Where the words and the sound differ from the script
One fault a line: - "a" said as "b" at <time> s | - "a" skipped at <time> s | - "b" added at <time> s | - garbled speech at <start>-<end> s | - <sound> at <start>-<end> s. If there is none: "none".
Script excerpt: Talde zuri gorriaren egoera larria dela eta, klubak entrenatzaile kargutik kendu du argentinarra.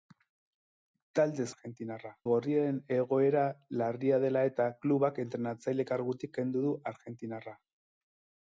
- "zuri" said as "argentinarra" at 1.5 s